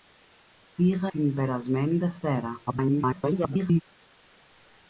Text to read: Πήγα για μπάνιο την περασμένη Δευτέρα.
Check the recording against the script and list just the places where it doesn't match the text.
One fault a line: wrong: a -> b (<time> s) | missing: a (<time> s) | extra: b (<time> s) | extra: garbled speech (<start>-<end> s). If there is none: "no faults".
missing: για μπάνιο (1.1 s)
extra: garbled speech (2.7-3.8 s)